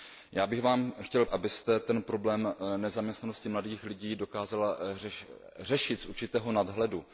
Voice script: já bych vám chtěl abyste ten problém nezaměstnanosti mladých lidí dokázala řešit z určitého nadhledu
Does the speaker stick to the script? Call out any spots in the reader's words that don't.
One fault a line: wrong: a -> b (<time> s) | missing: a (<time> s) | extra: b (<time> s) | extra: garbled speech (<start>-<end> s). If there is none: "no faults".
no faults